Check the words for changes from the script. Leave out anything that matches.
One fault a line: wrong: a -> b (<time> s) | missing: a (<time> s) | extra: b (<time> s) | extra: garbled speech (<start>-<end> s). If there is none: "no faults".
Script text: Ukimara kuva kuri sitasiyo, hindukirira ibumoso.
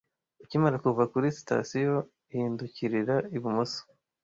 no faults